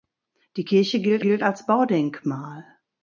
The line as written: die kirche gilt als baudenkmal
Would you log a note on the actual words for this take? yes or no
yes